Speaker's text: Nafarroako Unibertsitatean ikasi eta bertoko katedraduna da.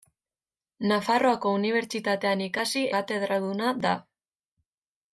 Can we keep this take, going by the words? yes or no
no